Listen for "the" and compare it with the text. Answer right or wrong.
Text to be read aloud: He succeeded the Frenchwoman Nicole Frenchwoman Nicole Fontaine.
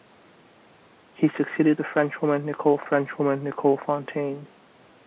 right